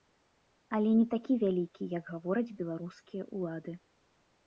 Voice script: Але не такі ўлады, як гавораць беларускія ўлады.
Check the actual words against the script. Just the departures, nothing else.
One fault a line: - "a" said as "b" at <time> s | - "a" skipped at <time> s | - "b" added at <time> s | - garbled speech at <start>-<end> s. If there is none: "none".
- "ўлады" said as "вялікі" at 1.4 s